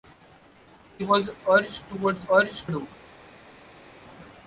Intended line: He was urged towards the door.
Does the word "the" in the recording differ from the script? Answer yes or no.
yes